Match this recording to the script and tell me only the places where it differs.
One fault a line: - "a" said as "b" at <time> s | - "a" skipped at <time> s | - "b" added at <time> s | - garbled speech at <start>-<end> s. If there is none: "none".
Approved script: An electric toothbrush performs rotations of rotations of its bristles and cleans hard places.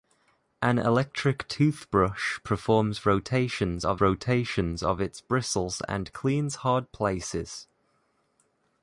none